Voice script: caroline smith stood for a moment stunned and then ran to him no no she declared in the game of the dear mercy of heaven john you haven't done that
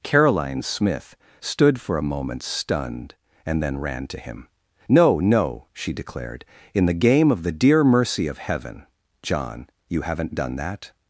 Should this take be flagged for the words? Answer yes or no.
no